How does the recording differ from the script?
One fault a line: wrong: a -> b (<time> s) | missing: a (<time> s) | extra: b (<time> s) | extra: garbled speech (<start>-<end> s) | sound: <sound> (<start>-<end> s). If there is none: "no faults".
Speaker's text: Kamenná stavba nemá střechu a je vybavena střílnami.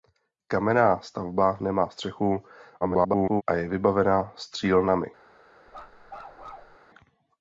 extra: garbled speech (2.8-3.4 s)
sound: bark (5.7-6.8 s)